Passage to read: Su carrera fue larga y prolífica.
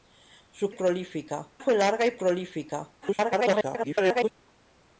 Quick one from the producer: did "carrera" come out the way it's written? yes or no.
no